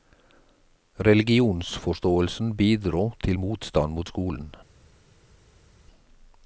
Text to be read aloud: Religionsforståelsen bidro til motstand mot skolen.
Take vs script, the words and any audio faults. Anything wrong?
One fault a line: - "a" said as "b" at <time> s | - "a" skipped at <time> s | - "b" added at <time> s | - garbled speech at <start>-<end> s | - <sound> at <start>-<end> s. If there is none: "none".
none